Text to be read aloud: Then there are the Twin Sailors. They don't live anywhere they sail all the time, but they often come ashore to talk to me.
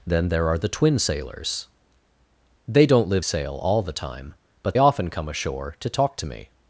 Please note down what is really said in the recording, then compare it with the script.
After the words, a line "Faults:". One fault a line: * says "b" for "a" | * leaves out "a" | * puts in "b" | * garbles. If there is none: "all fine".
Then there are the Twin Sailors. They don't live sail all the time, but often come ashore to talk to me.
Faults:
* leaves out "anywhere they"
* leaves out "they"